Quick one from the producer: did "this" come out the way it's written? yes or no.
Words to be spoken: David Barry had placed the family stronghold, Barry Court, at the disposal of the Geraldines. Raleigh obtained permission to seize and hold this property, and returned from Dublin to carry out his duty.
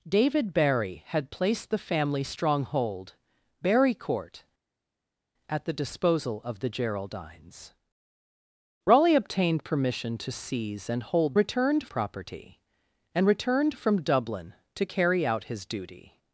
no